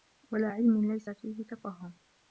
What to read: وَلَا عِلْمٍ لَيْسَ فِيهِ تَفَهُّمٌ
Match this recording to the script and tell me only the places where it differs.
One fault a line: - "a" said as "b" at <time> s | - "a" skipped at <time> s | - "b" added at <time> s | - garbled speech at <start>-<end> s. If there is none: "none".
none